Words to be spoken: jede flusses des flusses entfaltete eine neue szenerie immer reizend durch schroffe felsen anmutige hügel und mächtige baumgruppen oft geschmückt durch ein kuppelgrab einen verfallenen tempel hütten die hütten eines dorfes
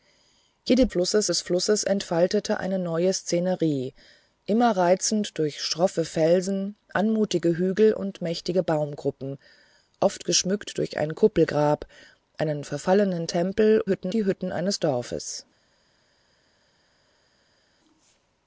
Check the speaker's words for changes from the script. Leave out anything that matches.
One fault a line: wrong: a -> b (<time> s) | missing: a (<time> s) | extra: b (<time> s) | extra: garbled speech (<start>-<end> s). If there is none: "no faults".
no faults